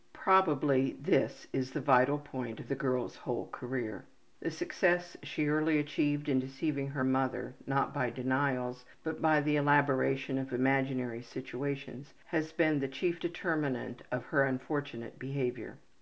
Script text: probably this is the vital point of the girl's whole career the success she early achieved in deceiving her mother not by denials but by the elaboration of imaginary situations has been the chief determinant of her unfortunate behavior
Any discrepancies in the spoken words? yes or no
no